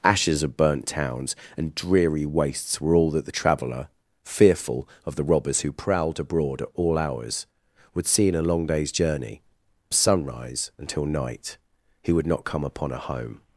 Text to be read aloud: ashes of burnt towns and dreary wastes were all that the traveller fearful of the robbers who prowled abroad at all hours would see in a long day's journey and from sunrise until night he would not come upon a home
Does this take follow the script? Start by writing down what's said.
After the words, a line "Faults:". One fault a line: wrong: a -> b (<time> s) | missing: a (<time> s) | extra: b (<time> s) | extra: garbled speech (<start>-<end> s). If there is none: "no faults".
ashes of burnt towns and dreary wastes were all that the traveller fearful of the robbers who prowled abroad at all hours would see in a long day's journey sunrise until night he would not come upon a home
Faults:
missing: and from (9.4 s)